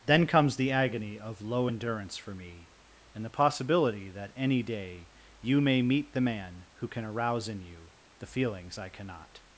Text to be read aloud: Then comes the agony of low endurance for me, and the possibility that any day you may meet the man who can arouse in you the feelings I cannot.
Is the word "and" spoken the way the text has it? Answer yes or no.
yes